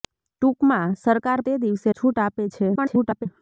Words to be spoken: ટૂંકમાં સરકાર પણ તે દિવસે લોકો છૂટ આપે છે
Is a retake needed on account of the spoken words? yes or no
yes